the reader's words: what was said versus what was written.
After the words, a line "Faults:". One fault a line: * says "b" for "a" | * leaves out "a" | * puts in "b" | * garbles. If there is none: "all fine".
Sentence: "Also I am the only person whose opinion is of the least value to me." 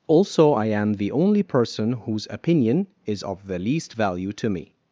"Also I am the only person whose opinion is of the least value to me."
Faults:
all fine